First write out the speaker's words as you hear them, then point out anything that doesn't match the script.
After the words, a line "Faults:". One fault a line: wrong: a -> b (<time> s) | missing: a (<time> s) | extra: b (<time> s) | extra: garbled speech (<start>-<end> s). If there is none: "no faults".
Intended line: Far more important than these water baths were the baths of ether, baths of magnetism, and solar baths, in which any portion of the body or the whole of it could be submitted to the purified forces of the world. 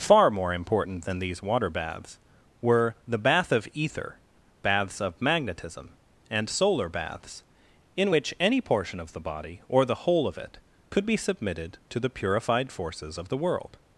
Far more important than these water baths were the bath of ether, baths of magnetism, and solar baths, in which any portion of the body or the whole of it could be submitted to the purified forces of the world.
Faults:
wrong: baths -> bath (3.2 s)